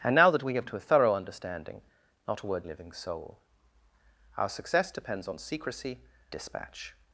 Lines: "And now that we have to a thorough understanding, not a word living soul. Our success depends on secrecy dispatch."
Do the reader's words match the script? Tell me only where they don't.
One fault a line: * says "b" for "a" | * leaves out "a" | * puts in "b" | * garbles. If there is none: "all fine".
all fine